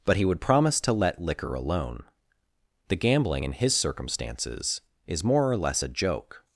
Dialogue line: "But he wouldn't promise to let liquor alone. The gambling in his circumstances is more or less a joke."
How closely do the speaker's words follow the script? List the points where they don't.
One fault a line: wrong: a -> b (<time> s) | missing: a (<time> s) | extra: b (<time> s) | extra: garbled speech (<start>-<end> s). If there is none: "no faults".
wrong: wouldn't -> would (0.2 s)